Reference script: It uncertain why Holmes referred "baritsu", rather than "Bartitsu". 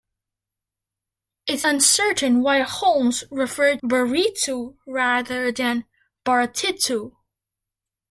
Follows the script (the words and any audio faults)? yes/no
yes